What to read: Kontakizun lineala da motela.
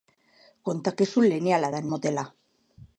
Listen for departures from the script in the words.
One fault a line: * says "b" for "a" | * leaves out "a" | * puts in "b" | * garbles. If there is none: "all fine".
all fine